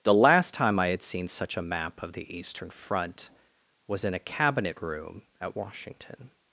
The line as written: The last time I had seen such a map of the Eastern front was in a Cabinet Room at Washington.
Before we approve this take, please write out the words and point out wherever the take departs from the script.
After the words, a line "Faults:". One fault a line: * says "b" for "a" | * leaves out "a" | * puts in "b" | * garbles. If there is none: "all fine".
The last time I had seen such a map of the Eastern front was in a Cabinet Room at Washington.
Faults:
all fine